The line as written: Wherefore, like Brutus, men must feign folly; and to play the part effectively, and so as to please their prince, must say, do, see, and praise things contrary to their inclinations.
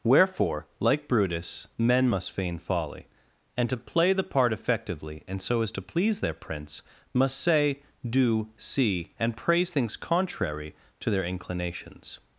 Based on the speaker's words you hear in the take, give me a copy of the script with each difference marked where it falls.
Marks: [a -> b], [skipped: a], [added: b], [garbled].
Wherefore, like Brutus, men must feign folly; and to play the part effectively, and so as to please their prince, must say, do, see, and praise things contrary to their inclinations.